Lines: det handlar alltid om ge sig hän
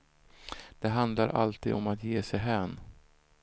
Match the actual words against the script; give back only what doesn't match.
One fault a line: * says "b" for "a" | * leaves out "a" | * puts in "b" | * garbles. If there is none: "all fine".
* puts in "att"